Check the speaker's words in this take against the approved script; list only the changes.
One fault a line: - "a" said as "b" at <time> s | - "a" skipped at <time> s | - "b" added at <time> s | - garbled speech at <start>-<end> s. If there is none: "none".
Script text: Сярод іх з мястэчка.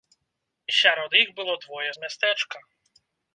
- "было двое" added at 1.4 s